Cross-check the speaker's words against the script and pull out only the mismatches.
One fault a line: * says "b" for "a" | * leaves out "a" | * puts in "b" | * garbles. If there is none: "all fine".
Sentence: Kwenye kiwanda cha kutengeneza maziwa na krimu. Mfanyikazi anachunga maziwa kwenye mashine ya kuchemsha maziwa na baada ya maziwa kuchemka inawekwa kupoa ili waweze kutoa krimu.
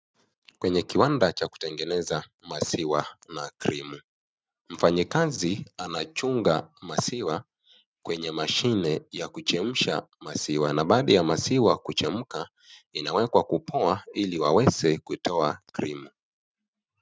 all fine